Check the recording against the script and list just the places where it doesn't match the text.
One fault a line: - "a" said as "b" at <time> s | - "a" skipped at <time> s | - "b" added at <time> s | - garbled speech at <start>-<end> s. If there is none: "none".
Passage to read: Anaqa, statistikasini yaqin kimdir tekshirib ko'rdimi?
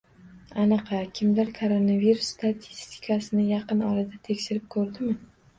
- "kimdir Koronavirus" added at 1.2 s
- "kimdir" said as "orada" at 3.9 s